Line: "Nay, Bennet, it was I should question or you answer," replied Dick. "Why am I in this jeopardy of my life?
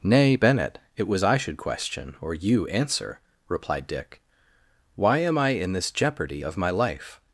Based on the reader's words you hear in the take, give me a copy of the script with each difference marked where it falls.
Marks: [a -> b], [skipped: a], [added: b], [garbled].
"Nay, Bennet, it was I should question or you answer," replied Dick. "Why am I in this jeopardy of my life?